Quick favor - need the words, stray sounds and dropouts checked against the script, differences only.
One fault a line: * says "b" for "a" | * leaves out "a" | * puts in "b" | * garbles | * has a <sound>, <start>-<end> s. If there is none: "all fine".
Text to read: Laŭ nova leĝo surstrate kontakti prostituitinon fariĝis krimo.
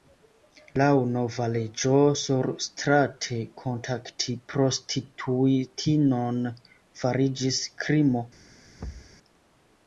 * has a thud, 8.8-9.2 s